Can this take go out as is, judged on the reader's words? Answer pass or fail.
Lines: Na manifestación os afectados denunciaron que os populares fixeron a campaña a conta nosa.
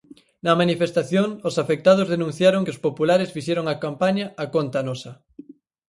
pass